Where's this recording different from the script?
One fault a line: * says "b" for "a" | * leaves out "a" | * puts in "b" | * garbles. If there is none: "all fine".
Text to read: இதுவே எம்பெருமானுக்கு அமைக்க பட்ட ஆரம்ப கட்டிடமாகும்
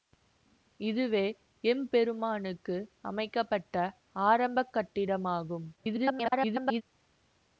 * garbles